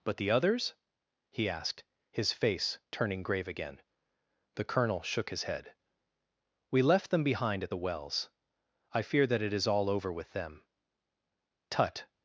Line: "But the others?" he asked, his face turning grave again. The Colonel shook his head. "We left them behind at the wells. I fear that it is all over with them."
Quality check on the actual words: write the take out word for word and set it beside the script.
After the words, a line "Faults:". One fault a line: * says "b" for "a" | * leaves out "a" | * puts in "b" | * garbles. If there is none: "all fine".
"But the others?" he asked, his face turning grave again. The Colonel shook his head. "We left them behind at the wells. I fear that it is all over with them." "Tut
Faults:
* puts in "Tut"